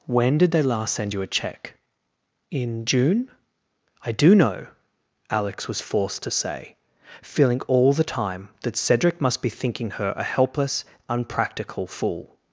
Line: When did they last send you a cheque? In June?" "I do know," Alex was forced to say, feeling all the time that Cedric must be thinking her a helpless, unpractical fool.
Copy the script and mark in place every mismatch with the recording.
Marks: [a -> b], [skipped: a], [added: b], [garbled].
When did they last send you a cheque? In June?" "I do know," Alex was forced to say, feeling all the time that Cedric must be thinking her a helpless, unpractical fool.